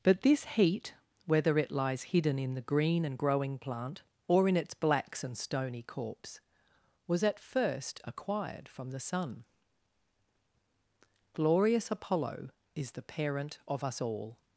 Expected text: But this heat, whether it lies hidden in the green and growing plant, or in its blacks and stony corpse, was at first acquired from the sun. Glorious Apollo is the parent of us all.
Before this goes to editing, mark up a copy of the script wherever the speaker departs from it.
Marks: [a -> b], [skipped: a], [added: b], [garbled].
But this heat, whether it lies hidden in the green and growing plant, or in its blacks and stony corpse, was at first acquired from the sun. Glorious Apollo is the parent of us all.